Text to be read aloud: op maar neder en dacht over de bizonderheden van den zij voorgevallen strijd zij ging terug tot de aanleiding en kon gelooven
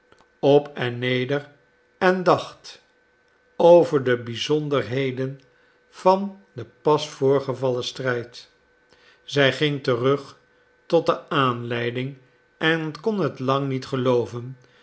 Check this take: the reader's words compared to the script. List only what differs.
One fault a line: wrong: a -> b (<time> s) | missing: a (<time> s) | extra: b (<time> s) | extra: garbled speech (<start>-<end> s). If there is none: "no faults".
wrong: maar -> en (0.7 s)
wrong: zij -> pas (6.8 s)
extra: het lang niet (13.2 s)